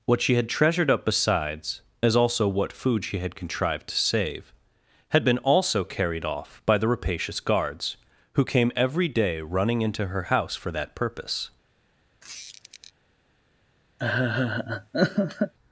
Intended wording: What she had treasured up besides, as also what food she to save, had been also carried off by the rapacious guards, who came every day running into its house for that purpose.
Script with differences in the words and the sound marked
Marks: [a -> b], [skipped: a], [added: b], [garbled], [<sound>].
What she had treasured up besides, as also what food she [added: had contrived] to save, had been also carried off by the rapacious guards, who came every day running into [its -> her] house for that purpose. [squeak] [laugh]